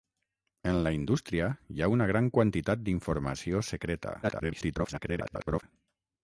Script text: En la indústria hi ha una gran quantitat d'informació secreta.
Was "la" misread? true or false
false